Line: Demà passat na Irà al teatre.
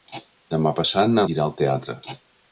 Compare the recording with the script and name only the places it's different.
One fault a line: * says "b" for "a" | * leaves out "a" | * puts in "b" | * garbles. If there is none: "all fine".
all fine